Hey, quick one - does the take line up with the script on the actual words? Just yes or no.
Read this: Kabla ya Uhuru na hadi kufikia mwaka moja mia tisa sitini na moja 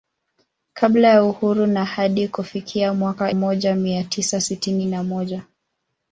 yes